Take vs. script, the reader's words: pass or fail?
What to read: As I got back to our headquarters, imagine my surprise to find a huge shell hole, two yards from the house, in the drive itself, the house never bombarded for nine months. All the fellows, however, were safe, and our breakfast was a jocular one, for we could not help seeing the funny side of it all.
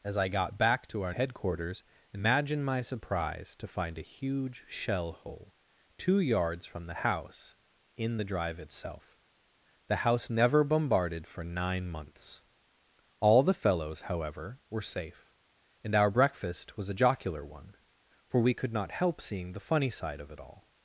pass